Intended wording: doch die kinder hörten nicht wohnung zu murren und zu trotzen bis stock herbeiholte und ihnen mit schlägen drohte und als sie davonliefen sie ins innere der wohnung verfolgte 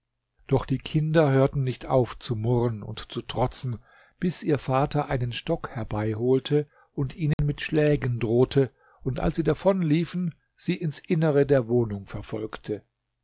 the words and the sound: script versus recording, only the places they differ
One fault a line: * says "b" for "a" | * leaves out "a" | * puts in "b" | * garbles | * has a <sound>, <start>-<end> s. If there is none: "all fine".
* says "auf" for "wohnung"
* puts in "ihr vater einen"
* has a dropout, 7.3-7.4 s